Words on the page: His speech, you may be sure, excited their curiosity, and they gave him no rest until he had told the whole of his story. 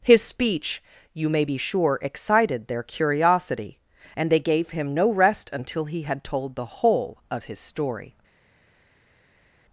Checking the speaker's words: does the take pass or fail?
pass